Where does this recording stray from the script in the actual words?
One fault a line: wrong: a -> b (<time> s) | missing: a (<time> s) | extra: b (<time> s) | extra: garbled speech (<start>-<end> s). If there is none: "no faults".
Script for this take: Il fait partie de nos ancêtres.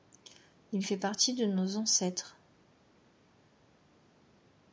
no faults